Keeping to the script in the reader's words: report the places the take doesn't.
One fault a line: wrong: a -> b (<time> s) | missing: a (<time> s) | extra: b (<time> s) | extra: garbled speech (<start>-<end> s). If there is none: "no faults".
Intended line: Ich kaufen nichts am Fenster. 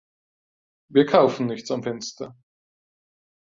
wrong: Ich -> Wir (0.9 s)